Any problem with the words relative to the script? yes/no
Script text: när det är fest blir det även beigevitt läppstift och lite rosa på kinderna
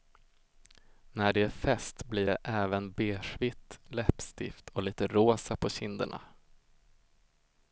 no